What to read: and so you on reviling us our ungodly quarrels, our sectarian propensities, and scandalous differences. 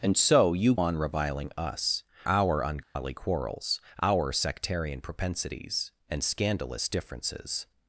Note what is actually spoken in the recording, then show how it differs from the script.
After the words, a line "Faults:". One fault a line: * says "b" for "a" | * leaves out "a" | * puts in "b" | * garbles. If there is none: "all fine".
and so you on reviling us our ungodly quarrels, our sectarian propensities, and scandalous differences.
Faults:
all fine